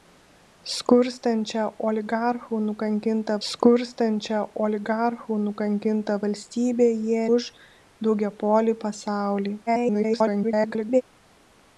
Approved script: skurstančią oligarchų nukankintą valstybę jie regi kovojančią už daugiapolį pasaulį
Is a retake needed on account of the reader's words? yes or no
yes